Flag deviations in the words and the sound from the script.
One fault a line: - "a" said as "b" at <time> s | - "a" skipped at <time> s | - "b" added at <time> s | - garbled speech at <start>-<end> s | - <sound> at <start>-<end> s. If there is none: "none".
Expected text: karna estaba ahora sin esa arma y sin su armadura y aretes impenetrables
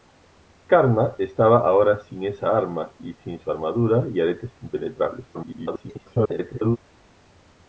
- garbled speech at 5.3-6.8 s